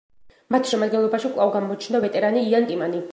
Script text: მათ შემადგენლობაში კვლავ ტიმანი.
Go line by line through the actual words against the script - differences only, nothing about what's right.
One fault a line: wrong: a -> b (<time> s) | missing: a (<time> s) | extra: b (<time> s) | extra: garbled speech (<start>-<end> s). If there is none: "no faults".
extra: გამოჩნდა ვეტერანი იან (1.6 s)